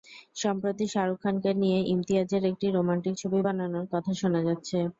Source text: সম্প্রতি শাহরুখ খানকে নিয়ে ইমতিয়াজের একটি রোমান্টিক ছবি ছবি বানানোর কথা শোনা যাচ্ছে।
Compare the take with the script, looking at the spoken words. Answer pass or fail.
fail